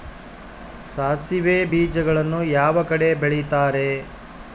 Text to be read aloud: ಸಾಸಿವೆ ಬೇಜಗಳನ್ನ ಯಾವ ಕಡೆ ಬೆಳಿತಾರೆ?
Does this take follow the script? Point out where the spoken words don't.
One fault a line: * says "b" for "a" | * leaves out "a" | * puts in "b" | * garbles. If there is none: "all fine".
all fine